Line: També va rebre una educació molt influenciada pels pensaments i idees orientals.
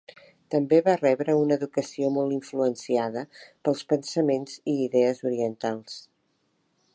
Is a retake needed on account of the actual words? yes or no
no